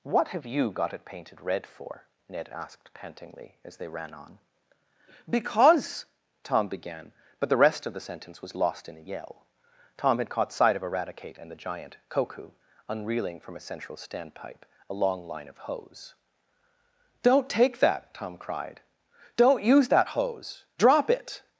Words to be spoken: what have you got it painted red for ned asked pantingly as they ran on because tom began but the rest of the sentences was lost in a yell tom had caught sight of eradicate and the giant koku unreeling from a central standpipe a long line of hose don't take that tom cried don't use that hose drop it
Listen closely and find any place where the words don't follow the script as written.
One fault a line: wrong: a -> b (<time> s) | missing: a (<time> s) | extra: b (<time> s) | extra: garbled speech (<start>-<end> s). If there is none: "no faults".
wrong: sentences -> sentence (8.0 s)